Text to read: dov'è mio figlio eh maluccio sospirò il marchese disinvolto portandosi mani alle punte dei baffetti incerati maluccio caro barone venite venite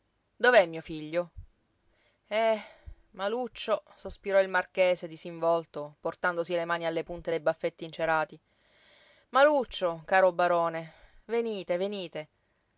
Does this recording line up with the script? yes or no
no